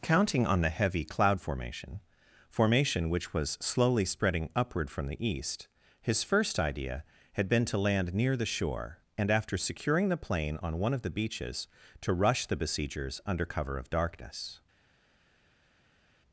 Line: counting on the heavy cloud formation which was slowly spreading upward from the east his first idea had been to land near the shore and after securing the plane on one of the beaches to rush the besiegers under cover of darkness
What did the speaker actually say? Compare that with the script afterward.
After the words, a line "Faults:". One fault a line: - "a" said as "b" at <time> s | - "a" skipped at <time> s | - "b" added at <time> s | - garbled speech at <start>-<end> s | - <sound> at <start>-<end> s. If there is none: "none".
counting on the heavy cloud formation formation which was slowly spreading upward from the east his first idea had been to land near the shore and after securing the plane on one of the beaches to rush the besiegers under cover of darkness
Faults:
- "formation" added at 2.5 s